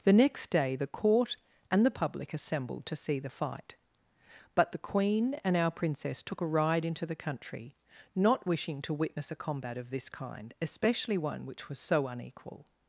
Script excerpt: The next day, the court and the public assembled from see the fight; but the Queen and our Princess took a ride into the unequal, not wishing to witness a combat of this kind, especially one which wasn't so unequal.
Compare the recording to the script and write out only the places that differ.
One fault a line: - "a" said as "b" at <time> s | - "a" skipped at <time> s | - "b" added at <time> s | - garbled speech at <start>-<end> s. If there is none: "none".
- "from" said as "to" at 2.9 s
- "unequal" said as "country" at 7.2 s
- "wasn't" said as "was" at 11.7 s